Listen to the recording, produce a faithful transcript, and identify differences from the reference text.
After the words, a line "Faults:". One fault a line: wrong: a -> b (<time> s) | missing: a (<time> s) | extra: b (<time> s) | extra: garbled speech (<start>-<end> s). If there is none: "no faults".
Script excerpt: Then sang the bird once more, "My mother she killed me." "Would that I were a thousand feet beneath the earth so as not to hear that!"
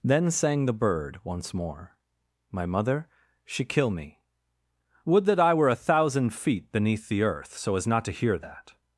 Then sang the bird once more, "My mother she kill me." "Would that I were a thousand feet beneath the earth so as not to hear that!"
Faults:
wrong: killed -> kill (3.6 s)